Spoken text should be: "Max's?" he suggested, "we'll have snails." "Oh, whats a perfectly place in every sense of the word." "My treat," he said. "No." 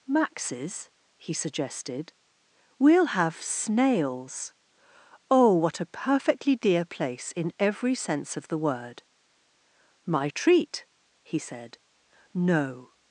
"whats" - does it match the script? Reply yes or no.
no